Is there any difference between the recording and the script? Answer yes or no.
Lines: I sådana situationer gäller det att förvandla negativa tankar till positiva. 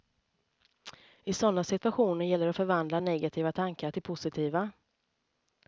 no